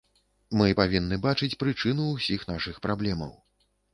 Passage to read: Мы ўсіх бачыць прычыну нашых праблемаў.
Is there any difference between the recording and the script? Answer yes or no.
yes